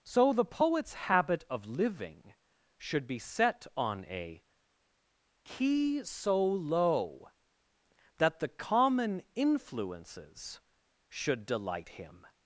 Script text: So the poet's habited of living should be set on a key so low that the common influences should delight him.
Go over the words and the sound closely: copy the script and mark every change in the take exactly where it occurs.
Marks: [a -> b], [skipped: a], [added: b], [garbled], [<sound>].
So the poet's [habited -> habit] of living should be set on a key so low that the common influences should delight him.